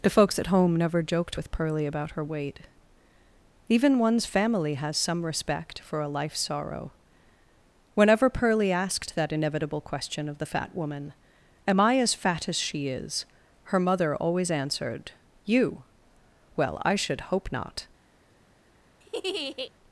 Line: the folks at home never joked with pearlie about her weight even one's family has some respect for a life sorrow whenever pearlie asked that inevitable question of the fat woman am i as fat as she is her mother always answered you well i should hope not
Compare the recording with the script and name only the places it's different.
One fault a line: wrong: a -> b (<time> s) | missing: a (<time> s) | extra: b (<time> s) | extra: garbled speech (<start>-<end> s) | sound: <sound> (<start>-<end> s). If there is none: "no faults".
sound: laugh (19.0-19.7 s)